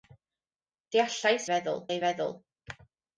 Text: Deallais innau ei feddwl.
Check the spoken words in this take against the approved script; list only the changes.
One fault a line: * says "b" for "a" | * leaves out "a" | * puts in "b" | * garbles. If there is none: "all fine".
* says "feddwl" for "innau"